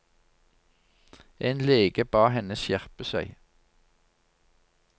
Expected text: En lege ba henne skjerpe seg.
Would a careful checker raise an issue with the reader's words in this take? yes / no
no